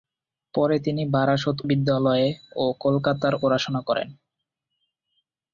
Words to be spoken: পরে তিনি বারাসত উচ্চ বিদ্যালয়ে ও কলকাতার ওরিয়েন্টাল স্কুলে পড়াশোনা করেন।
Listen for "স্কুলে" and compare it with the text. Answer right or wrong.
wrong